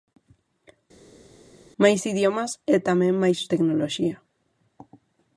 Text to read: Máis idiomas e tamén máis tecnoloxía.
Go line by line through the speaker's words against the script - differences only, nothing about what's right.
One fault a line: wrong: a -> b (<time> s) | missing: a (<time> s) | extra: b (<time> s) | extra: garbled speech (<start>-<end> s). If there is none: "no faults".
no faults